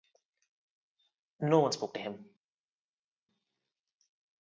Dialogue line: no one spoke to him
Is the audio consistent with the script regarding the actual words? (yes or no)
yes